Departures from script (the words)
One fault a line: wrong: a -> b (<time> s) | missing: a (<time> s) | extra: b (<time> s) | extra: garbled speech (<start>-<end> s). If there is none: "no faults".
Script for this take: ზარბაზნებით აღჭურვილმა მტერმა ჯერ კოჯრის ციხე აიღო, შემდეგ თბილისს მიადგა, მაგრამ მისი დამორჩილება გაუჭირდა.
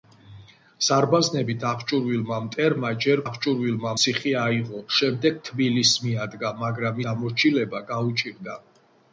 wrong: კოჯრის -> აღჭურვილმა (3.3 s)
missing: მისი (7.0 s)